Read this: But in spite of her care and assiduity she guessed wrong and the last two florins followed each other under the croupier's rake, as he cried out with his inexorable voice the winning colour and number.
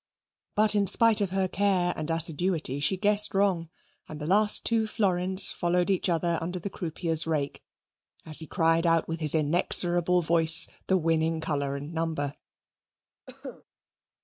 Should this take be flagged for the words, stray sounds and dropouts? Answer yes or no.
yes